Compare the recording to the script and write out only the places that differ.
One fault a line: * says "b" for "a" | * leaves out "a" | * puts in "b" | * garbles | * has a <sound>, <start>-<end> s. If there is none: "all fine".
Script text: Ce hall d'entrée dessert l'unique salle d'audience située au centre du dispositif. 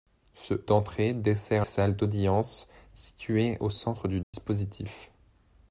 * leaves out "hall"
* leaves out "l'unique"
* has a dropout, 4.2-4.3 s